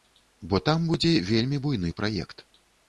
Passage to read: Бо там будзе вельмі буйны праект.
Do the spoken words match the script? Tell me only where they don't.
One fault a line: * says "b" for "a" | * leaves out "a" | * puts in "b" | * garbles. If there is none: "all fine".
all fine